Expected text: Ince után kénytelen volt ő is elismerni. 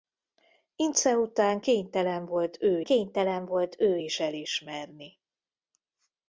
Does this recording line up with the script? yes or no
no